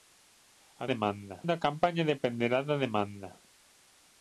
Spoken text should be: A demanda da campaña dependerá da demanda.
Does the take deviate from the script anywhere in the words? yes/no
no